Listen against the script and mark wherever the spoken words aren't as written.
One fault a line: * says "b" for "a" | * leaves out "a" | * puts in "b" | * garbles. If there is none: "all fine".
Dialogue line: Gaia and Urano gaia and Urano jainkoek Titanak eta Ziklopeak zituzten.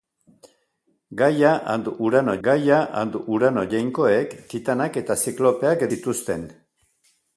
all fine